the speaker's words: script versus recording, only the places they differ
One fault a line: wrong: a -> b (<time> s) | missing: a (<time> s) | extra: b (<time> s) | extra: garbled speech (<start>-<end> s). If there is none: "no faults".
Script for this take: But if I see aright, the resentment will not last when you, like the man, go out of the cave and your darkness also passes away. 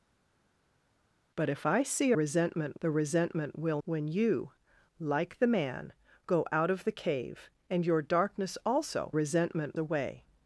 wrong: aright -> resentment (2.1 s)
missing: not last (3.8 s)
wrong: passes -> resentment (9.1 s)